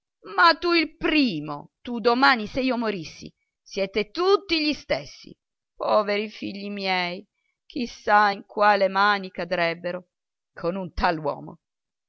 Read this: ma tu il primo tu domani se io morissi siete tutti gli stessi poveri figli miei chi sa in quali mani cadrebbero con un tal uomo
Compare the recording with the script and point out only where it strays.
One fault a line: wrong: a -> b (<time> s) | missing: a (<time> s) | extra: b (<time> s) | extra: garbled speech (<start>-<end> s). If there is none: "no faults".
no faults